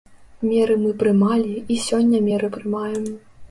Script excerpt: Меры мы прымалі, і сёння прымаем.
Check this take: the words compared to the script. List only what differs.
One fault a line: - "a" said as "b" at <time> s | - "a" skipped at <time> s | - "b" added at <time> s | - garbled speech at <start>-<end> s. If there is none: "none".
- "меры" added at 2.3 s